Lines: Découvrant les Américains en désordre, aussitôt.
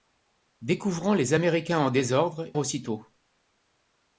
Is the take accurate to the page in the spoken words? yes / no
yes